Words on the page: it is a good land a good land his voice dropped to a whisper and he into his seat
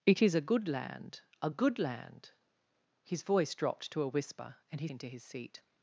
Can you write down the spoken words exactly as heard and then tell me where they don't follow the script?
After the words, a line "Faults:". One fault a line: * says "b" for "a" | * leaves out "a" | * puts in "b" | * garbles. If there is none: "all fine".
it is a good land a good land his voice dropped to a whisper and he into his seat
Faults:
all fine